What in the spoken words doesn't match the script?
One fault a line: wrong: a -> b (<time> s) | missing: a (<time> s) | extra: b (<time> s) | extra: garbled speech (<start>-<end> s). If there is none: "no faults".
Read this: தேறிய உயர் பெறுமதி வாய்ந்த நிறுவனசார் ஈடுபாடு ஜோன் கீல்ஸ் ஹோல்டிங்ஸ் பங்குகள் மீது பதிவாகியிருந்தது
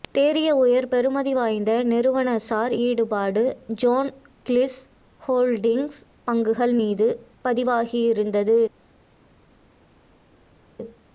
no faults